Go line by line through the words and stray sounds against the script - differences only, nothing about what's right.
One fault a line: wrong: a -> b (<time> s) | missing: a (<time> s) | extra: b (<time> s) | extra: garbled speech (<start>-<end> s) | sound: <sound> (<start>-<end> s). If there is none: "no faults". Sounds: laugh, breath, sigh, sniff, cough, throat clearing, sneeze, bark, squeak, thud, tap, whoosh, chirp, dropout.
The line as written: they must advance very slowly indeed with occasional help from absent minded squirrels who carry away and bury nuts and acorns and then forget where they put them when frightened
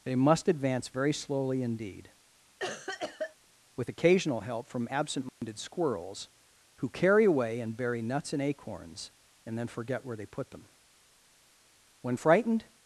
sound: cough (2.6-3.4 s)
sound: dropout (5.3-5.4 s)